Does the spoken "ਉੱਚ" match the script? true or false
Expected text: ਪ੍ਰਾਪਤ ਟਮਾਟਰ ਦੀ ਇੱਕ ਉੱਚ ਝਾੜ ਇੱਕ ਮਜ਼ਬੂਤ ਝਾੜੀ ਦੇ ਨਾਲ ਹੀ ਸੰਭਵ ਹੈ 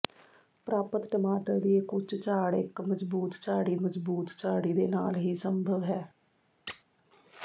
true